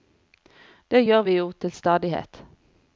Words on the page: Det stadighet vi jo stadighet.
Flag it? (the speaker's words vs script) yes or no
yes